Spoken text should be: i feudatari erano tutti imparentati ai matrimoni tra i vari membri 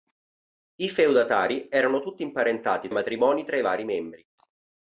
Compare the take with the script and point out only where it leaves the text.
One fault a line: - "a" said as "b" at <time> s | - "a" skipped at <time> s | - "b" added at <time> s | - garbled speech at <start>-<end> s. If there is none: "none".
none